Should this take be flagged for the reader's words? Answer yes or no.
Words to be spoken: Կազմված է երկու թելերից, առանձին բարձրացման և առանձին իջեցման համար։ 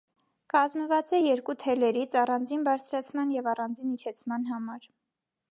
no